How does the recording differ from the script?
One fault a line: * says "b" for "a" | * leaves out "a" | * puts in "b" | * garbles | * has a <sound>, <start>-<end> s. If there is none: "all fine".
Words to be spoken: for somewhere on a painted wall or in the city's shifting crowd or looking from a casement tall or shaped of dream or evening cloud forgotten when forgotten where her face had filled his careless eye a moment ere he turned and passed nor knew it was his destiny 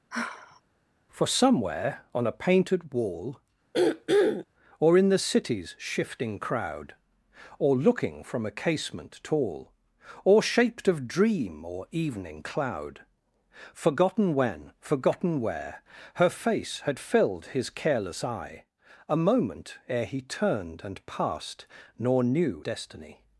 * has a sigh, 0.1-0.6 s
* has a throat clearing, 3.7-4.5 s
* leaves out "it was his"